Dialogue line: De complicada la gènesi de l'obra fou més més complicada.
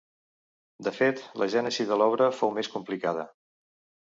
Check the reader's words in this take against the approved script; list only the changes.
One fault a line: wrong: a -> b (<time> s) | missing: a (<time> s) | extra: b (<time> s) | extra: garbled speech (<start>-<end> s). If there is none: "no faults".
wrong: complicada -> fet (1.0 s)
missing: més (2.7 s)